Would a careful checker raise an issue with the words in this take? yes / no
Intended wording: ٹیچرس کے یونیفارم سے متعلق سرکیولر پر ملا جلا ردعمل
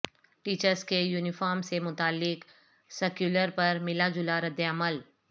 no